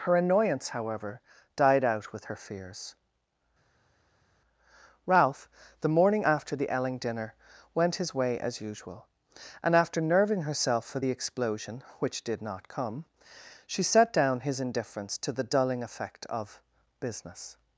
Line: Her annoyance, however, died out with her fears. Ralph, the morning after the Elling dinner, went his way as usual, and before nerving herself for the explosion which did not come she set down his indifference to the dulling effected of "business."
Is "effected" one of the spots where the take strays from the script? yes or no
yes